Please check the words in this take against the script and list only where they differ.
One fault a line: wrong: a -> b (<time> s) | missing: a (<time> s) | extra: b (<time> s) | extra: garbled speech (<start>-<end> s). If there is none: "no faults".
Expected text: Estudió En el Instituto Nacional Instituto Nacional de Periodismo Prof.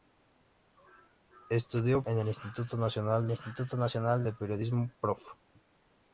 no faults